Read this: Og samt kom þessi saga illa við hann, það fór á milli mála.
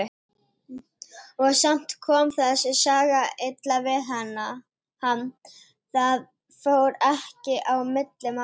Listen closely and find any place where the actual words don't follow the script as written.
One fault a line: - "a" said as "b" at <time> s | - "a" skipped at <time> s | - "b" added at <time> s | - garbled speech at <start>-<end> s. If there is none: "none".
- "ekki" added at 7.1 s